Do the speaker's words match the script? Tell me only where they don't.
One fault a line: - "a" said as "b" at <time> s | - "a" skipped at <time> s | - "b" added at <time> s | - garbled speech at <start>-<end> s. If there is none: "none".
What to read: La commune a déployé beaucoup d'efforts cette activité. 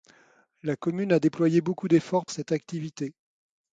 none